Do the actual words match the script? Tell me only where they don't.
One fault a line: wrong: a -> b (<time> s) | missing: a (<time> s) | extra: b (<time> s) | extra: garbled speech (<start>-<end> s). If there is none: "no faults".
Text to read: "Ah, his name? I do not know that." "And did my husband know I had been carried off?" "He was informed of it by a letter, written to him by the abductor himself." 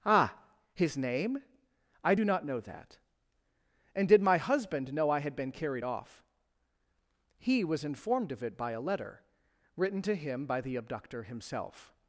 no faults